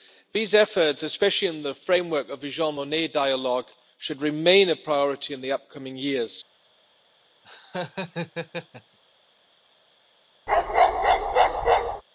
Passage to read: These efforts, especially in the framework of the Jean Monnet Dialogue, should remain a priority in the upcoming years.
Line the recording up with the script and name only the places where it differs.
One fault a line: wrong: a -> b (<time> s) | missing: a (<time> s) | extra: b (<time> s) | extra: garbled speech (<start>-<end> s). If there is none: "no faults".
no faults